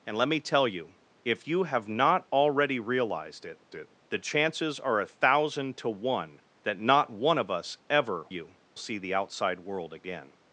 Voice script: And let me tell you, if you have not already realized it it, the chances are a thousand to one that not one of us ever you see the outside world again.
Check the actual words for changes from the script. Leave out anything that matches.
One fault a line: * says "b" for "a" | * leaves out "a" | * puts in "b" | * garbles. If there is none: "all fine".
all fine